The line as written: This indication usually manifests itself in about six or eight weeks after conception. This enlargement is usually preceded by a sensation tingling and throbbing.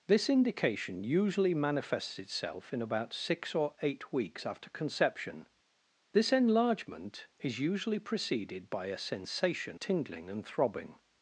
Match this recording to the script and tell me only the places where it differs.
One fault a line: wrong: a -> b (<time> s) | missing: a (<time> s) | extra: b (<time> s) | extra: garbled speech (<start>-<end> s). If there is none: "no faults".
no faults